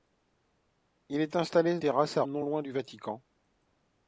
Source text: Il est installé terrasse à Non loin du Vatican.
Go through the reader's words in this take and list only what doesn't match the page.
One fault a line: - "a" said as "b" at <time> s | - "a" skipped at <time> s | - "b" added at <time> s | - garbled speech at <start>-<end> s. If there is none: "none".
none